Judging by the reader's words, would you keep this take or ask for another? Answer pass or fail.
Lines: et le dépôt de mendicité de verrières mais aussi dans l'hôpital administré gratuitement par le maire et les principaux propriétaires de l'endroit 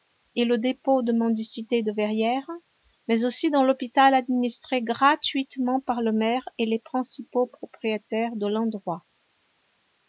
pass